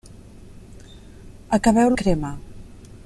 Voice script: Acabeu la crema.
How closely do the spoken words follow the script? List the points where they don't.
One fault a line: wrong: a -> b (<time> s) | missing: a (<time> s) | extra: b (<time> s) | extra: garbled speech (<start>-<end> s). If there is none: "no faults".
no faults